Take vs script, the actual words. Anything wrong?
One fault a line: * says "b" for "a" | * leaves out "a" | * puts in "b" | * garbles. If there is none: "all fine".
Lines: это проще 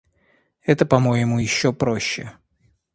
* puts in "по моему еще"